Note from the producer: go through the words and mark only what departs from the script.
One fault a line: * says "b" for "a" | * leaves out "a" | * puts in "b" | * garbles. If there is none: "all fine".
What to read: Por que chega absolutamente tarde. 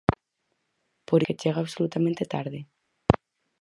all fine